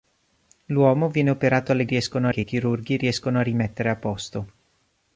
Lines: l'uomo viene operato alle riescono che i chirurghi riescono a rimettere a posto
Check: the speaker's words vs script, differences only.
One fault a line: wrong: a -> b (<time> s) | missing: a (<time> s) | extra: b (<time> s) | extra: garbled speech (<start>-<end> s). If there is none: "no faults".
no faults